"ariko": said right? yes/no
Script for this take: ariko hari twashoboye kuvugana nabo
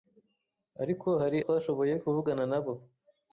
yes